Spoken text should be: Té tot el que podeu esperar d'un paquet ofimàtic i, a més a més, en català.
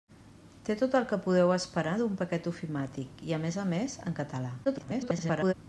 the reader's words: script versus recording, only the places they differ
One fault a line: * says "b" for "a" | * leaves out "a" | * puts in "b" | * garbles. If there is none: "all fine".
* garbles